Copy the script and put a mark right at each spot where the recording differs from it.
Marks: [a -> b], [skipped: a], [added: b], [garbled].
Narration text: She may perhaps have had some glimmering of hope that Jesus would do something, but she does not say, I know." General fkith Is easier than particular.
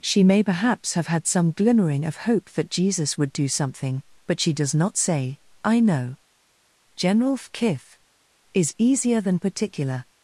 She may perhaps have had some glimmering of hope that Jesus would do something, but she does not say, I know." General fkith Is easier than particular.